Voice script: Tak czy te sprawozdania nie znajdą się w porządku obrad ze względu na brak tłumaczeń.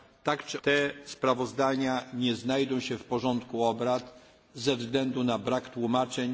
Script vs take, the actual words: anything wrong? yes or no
no